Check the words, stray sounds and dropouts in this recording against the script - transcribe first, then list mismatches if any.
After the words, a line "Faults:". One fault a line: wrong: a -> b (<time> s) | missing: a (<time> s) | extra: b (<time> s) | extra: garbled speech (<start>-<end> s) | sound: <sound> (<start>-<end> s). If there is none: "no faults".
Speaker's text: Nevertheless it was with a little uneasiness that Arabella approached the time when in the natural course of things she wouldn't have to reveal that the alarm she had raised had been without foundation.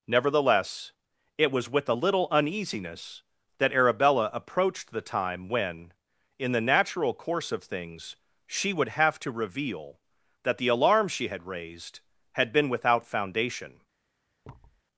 Nevertheless it was with a little uneasiness that Arabella approached the time when in the natural course of things she would have to reveal that the alarm she had raised had been without foundation.
Faults:
wrong: wouldn't -> would (8.7 s)
sound: thud (14.4-14.8 s)